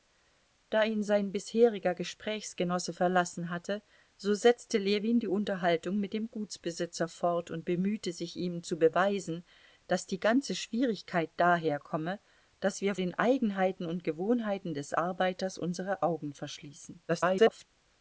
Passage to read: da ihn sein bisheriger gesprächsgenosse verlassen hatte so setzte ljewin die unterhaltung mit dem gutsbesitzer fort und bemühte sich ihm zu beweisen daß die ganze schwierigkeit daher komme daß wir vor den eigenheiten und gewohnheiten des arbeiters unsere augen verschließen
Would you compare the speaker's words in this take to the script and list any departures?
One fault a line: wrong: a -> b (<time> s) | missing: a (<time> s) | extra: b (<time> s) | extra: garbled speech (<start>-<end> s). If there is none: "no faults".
missing: vor (12.9 s)
extra: garbled speech (17.1-17.7 s)